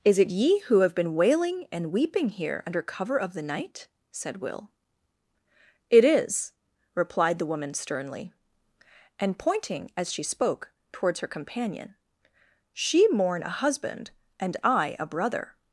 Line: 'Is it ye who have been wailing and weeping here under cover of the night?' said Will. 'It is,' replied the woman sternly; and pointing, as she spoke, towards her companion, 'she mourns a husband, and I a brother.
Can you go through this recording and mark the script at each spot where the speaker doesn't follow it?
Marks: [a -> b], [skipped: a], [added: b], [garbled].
'Is it ye who have been wailing and weeping here under cover of the night?' said Will. 'It is,' replied the woman sternly; and pointing, as she spoke, towards her companion, 'she [mourns -> mourn] a husband, and I a brother.